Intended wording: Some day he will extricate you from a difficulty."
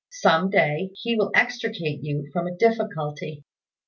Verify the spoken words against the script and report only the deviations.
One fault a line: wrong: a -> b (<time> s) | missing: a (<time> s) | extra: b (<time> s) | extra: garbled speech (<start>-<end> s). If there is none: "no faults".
no faults